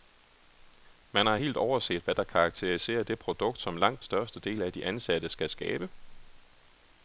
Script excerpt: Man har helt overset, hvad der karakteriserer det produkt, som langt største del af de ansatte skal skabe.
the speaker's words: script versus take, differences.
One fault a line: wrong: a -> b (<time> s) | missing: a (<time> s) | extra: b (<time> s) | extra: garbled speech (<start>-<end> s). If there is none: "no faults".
no faults